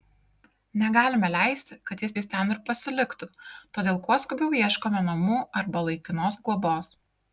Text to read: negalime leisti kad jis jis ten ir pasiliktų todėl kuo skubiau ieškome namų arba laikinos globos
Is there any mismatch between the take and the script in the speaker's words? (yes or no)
no